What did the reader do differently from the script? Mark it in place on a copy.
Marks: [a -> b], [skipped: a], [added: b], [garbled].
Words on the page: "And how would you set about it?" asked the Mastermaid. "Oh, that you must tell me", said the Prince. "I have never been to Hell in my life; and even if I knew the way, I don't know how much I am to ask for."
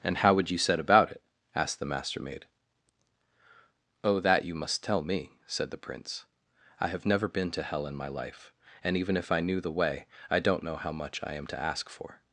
"And how would you set about it?" asked the Mastermaid. "Oh, that you must tell me", said the Prince. "I have never been to Hell in my life; and even if I knew the way, I don't know how much I am to ask for."